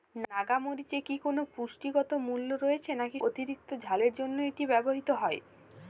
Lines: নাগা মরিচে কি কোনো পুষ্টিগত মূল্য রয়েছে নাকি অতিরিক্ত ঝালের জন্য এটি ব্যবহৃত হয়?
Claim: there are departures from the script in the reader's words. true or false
false